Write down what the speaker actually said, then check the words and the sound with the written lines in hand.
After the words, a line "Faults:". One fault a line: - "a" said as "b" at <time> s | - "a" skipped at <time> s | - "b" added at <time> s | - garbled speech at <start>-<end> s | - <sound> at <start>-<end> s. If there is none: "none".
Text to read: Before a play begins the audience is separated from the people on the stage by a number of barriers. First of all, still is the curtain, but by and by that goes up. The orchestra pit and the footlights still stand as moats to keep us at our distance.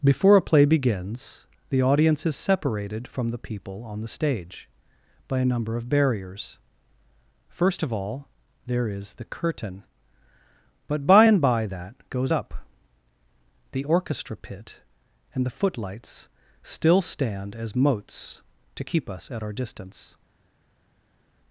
Before a play begins the audience is separated from the people on the stage by a number of barriers. First of all, there is the curtain, but by and by that goes up. The orchestra pit and the footlights still stand as moats to keep us at our distance.
Faults:
- "still" said as "there" at 8.7 s